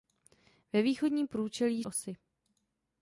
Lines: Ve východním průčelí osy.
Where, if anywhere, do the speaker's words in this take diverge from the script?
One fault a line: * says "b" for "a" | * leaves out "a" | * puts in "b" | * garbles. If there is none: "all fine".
all fine